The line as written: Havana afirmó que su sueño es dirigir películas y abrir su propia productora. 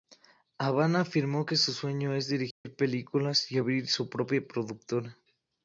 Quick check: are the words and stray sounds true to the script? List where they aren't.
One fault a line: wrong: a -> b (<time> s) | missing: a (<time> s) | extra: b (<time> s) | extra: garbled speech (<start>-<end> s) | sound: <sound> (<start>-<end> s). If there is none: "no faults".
sound: dropout (2.5-2.6 s)